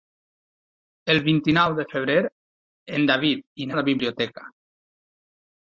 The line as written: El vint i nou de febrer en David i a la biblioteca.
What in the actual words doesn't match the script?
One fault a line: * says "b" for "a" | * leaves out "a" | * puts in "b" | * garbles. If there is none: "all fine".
all fine